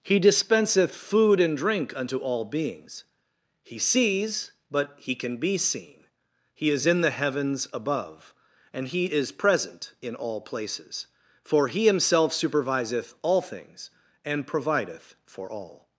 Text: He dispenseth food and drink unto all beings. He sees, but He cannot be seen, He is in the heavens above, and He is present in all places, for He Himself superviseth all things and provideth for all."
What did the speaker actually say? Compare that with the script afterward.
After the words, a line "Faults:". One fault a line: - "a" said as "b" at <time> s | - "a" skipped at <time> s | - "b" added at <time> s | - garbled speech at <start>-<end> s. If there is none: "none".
He dispenseth food and drink unto all beings. He sees, but He can be seen, He is in the heavens above, and He is present in all places, for He Himself superviseth all things and provideth for all."
Faults:
- "cannot" said as "can" at 5.2 s